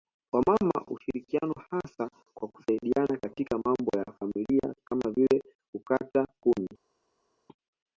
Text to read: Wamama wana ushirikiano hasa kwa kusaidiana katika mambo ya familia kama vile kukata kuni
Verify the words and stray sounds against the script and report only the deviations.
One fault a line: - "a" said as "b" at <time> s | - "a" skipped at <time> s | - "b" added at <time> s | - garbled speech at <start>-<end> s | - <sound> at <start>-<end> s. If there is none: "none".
- "wana" skipped at 0.9 s